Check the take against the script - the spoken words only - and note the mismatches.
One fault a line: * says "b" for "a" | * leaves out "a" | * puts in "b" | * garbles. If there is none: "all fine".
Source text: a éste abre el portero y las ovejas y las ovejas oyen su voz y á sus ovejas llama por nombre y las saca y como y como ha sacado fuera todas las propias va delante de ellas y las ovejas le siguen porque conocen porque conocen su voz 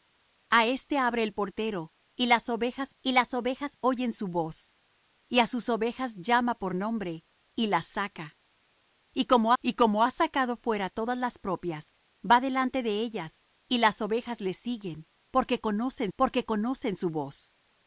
all fine